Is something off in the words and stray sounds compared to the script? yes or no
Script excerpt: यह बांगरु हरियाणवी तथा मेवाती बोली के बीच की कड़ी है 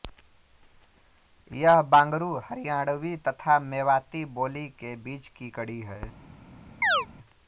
yes